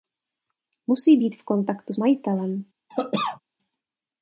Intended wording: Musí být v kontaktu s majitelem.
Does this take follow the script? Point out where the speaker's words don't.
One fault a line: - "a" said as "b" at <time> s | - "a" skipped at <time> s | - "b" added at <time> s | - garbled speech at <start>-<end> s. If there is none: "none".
- "s" skipped at 1.9 s